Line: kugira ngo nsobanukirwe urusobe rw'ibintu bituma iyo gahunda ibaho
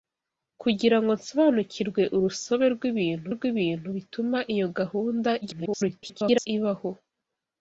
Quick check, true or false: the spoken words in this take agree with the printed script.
false